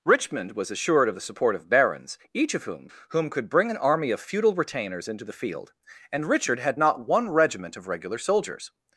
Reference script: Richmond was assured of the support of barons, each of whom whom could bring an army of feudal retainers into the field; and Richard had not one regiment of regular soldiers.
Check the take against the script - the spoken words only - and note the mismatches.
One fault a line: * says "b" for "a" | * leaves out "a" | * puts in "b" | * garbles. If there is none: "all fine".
all fine